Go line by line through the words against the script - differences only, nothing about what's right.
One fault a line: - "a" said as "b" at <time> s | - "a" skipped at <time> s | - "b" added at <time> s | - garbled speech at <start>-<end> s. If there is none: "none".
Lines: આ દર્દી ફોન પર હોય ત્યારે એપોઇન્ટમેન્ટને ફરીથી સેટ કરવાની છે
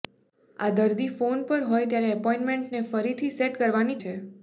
none